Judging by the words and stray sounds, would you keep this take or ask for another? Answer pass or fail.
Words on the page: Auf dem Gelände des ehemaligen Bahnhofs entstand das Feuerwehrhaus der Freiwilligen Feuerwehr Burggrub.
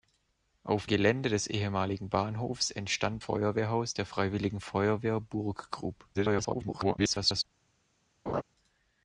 fail